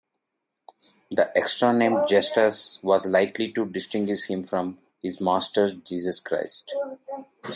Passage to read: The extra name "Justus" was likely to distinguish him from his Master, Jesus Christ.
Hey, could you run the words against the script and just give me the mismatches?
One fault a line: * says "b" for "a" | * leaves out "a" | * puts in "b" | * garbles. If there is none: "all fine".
all fine